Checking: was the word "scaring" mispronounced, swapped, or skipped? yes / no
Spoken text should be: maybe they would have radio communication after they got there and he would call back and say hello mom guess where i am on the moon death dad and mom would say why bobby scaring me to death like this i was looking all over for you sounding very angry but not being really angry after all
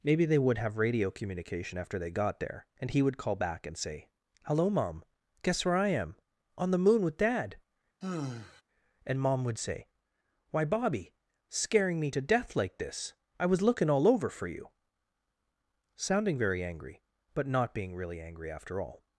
no